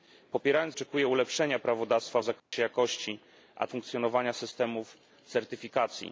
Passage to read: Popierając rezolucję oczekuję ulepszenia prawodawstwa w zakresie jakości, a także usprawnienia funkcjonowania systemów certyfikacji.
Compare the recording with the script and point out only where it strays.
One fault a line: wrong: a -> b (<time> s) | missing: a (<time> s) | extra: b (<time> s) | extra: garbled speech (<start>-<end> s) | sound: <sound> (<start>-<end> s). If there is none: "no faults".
missing: rezolucję (0.8 s)
sound: dropout (2.4-2.5 s)
missing: także usprawnienia (3.7 s)